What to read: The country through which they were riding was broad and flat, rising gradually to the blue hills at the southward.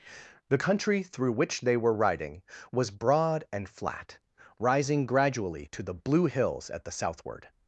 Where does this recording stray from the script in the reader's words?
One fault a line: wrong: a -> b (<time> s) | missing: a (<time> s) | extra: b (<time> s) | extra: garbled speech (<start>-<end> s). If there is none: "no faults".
no faults